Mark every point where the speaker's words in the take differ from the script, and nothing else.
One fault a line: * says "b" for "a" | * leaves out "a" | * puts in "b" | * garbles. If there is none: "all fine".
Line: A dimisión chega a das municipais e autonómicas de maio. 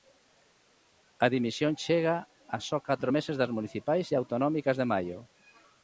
* puts in "só catro meses"